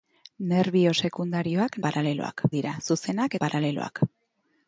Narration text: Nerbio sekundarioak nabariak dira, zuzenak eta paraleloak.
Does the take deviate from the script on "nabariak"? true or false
true